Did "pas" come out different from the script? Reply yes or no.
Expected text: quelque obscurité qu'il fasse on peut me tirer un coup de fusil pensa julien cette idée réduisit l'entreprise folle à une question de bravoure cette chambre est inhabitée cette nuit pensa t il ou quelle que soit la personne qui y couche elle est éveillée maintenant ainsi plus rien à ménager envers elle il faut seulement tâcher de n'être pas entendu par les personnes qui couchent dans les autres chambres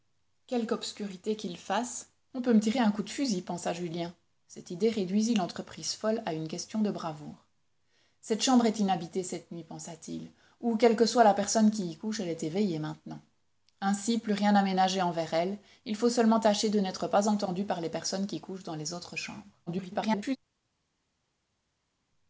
no